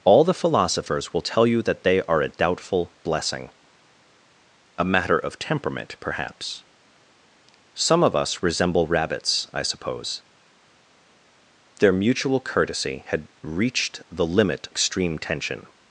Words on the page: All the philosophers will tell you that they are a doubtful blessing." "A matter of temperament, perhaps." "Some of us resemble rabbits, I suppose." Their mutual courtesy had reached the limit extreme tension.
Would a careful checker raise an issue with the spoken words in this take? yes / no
no